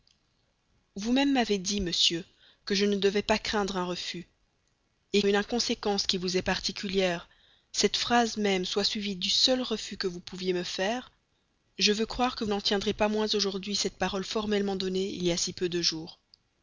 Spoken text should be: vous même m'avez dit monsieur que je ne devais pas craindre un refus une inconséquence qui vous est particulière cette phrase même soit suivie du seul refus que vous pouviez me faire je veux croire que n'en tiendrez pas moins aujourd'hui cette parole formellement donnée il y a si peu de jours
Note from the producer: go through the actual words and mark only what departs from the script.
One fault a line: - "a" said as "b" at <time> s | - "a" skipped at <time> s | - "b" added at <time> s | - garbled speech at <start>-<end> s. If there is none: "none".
none